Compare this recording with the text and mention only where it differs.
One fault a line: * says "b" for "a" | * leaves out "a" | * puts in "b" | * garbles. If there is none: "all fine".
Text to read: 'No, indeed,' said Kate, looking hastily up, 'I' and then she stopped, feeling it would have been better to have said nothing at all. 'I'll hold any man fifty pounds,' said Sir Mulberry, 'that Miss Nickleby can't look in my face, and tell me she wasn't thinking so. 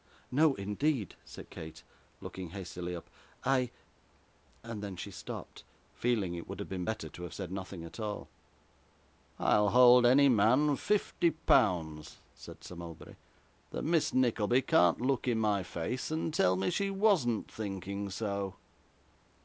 all fine